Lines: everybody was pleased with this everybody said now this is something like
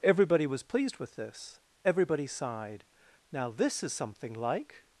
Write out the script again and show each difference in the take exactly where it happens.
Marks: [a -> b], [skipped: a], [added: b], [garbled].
everybody was pleased with this everybody [said -> sighed] now this is something like